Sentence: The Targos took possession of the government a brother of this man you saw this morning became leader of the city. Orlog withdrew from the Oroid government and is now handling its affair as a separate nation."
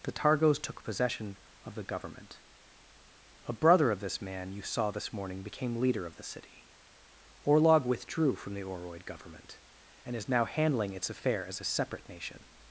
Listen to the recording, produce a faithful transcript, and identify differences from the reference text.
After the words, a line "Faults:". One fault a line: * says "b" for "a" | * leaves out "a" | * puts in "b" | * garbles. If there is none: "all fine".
The Targos took possession of the government a brother of this man you saw this morning became leader of the city. Orlog withdrew from the Oroid government and is now handling its affair as a separate nation."
Faults:
all fine